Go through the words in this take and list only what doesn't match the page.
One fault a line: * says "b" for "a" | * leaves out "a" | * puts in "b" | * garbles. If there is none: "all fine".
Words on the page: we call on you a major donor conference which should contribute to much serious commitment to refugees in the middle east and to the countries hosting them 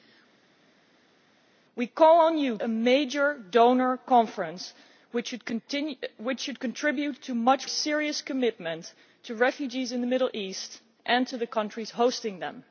all fine